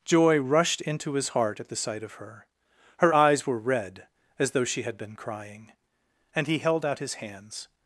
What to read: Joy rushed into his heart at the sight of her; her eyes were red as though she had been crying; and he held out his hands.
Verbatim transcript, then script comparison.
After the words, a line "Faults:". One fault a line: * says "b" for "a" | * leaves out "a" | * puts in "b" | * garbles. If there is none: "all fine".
Joy rushed into his heart at the sight of her; her eyes were red as though she had been crying; and he held out his hands.
Faults:
all fine